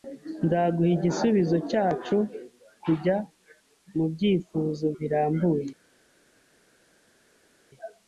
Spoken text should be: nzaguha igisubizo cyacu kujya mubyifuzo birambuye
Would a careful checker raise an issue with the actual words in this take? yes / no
no